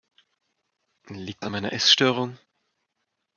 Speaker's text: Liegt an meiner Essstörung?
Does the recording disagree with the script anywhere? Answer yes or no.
no